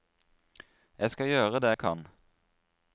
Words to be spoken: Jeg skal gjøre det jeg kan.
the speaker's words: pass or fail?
pass